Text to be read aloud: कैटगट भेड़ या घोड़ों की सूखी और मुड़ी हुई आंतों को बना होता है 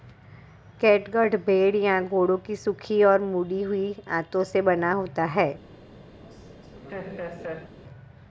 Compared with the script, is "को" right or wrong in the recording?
wrong